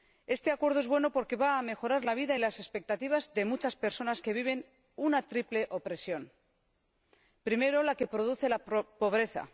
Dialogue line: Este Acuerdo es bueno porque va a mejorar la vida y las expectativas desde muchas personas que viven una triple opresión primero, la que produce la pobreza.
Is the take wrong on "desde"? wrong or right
wrong